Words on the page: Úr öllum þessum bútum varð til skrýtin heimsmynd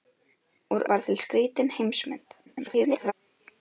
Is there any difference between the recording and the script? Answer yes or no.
yes